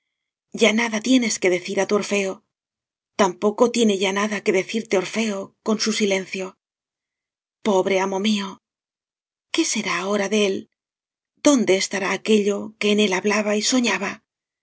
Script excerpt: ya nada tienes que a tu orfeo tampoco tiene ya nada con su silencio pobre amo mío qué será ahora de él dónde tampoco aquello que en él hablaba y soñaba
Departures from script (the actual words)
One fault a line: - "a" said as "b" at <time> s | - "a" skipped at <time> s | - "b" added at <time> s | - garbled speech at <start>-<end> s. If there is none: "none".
- "decir" added at 1.6 s
- "que decirte orfeo" added at 4.4 s
- "tampoco" said as "estará" at 11.8 s